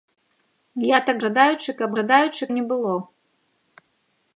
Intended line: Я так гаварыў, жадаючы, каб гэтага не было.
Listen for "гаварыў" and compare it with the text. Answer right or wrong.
wrong